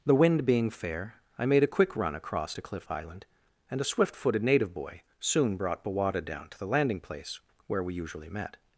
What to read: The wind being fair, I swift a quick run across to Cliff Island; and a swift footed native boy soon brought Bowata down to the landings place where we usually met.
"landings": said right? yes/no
no